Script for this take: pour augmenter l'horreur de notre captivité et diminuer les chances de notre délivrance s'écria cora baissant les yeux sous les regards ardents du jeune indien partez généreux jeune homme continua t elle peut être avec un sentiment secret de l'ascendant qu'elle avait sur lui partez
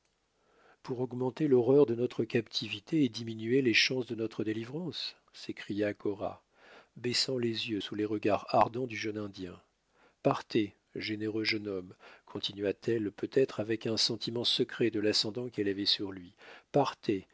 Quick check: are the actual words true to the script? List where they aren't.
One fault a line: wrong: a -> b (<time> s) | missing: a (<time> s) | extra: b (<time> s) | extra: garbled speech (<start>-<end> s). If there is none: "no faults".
no faults